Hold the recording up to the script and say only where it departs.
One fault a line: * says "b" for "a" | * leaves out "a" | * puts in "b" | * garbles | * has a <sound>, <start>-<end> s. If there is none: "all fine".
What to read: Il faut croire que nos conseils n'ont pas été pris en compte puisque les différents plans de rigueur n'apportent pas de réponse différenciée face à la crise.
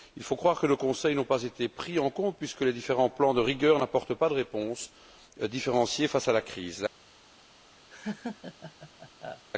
* has a laugh, 7.9-9.4 s